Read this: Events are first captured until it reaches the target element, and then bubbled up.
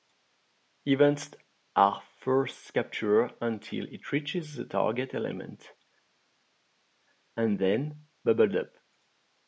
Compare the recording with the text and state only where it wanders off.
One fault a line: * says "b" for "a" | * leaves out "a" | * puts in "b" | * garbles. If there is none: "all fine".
all fine